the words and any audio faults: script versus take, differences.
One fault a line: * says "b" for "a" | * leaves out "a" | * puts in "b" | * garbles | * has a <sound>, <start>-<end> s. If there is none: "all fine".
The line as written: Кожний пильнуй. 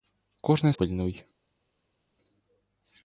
all fine